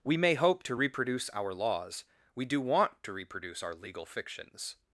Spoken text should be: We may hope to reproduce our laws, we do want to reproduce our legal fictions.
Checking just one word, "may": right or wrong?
right